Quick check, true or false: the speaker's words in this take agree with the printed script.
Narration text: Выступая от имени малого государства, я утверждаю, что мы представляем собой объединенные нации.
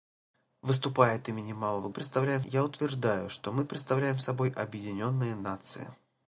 false